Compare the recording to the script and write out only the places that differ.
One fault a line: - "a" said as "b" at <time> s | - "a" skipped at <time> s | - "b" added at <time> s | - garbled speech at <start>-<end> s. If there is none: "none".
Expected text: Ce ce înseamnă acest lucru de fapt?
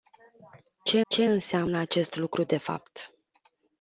none